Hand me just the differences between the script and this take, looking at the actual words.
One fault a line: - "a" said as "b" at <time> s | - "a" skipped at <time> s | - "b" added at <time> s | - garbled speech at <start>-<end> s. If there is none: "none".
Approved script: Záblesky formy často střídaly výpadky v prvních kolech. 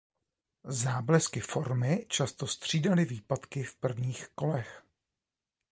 none